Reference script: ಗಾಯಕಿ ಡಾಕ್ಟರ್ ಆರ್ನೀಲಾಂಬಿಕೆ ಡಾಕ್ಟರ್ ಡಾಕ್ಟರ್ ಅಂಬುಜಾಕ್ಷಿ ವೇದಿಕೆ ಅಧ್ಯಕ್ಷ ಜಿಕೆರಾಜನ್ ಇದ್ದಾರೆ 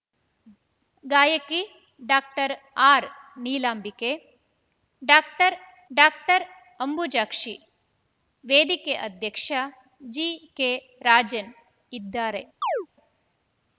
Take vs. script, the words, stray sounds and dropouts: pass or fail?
fail